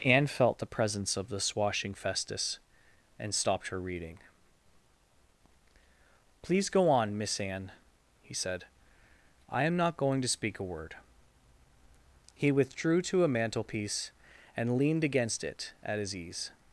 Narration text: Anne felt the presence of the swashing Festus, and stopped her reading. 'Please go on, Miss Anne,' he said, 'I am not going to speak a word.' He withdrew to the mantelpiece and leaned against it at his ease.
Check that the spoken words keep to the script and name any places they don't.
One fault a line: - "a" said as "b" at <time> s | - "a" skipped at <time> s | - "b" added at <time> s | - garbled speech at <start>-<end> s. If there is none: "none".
- "the" said as "a" at 13.2 s